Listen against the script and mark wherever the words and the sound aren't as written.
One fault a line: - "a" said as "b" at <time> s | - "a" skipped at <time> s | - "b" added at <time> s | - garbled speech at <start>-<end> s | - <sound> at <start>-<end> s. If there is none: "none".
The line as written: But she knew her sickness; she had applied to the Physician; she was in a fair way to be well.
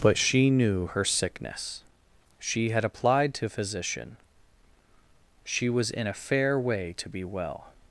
- "the" skipped at 3.5 s